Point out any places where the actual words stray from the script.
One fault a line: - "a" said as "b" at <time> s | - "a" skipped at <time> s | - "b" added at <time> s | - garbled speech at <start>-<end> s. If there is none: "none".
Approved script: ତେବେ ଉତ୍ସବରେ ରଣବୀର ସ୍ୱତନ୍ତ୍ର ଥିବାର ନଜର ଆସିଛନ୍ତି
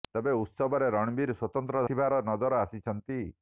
none